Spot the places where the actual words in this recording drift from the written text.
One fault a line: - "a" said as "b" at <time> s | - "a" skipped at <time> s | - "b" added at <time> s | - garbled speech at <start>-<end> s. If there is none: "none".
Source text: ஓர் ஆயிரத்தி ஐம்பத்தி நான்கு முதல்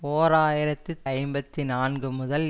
none